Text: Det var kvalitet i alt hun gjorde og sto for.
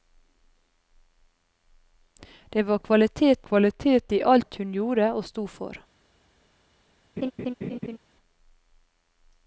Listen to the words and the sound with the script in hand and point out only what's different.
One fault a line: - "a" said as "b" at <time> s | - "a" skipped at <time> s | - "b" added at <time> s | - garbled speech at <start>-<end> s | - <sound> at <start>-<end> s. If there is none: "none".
- "kvalitet" added at 3.4 s
- laugh at 7.2-8.0 s